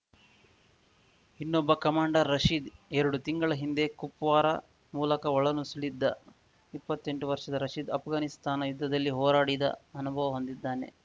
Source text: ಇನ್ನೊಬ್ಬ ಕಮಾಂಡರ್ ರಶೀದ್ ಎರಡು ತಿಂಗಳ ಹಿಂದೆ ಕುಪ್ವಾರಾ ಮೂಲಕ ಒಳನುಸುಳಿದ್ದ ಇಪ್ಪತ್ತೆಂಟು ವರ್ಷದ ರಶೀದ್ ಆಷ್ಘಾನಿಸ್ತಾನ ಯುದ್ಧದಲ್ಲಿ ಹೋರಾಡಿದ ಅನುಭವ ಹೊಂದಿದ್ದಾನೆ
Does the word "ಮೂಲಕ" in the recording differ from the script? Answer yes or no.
no